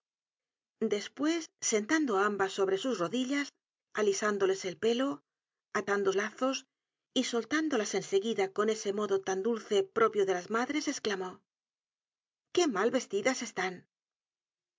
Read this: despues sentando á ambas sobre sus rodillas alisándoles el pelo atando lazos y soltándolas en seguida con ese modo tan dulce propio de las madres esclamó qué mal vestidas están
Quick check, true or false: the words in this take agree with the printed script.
true